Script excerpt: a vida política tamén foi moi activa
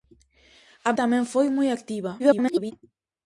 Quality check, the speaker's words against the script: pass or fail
fail